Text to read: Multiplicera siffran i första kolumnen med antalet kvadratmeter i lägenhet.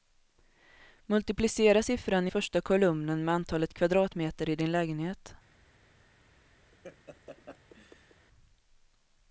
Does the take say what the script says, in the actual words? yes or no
no